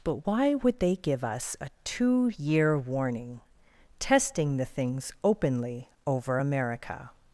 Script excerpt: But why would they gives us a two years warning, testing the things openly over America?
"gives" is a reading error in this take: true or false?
true